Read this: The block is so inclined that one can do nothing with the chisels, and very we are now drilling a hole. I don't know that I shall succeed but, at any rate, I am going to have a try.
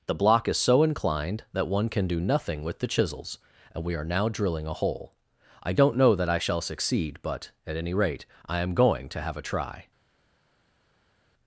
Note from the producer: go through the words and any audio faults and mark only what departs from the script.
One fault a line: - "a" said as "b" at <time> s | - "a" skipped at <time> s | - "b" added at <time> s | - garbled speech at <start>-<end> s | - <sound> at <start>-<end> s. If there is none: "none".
- "very" skipped at 3.8 s